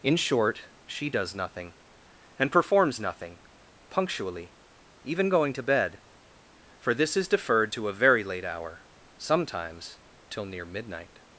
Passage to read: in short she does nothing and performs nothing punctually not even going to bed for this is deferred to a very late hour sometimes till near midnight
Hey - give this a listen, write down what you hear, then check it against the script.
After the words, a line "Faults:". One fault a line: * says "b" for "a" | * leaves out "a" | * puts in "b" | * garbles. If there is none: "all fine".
in short she does nothing and performs nothing punctually even going to bed for this is deferred to a very late hour sometimes till near midnight
Faults:
* leaves out "not"